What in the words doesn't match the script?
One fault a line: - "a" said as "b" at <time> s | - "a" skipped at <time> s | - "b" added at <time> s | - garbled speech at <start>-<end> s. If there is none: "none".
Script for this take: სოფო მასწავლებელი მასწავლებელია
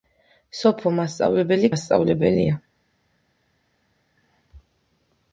none